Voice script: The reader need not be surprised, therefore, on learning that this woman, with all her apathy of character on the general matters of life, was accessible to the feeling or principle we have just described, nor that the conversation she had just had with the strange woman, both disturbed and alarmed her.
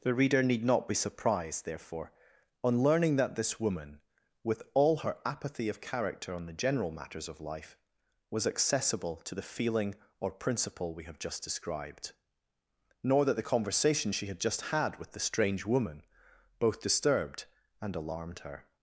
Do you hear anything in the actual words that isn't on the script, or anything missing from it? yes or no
no